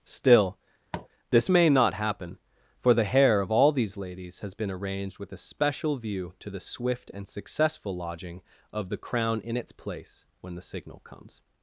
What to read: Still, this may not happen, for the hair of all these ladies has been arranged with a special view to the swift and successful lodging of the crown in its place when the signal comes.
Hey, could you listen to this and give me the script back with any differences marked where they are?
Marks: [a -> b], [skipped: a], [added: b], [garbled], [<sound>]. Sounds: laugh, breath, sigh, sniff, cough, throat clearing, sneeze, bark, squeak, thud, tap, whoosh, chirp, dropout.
Still, [tap] this may not happen, for the hair of all these ladies has been arranged with a special view to the swift and successful lodging of the crown in its place when the signal comes.